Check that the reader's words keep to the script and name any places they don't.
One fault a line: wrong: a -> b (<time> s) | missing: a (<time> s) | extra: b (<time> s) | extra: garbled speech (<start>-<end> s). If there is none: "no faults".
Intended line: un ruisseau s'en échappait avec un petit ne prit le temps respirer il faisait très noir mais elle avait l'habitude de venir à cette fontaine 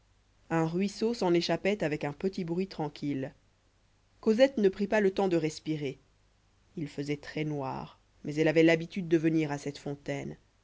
extra: bruit tranquille cosette (2.4 s)
extra: pas (4.9 s)
extra: de (5.3 s)